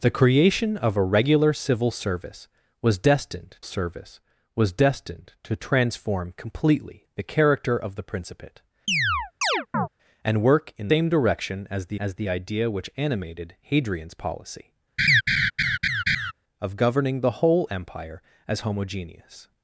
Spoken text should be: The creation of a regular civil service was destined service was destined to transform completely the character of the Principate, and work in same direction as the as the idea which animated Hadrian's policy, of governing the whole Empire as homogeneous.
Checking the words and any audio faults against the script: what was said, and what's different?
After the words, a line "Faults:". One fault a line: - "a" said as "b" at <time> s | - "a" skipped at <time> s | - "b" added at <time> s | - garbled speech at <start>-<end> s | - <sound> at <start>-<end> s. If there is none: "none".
The creation of a regular civil service was destined service was destined to transform completely the character of the Principate, and work in same direction as the as the idea which animated Hadrian's policy, of governing the whole Empire as homogeneous.
Faults:
- chirp at 8.9-9.9 s
- laugh at 15.0-16.3 s